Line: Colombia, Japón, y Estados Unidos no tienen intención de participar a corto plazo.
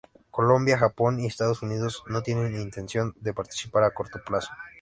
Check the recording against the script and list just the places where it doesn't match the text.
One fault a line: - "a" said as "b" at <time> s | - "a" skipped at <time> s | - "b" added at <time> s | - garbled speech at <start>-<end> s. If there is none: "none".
none